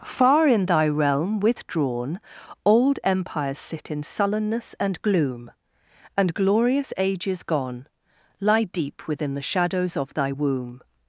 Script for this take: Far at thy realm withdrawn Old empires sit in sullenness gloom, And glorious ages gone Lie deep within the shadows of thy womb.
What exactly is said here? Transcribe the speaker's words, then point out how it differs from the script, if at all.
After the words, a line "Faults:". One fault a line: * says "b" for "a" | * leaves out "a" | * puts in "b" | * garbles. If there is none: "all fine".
Far in thy realm withdrawn Old empires sit in sullenness and gloom, And glorious ages gone Lie deep within the shadows of thy womb.
Faults:
* says "in" for "at"
* puts in "and"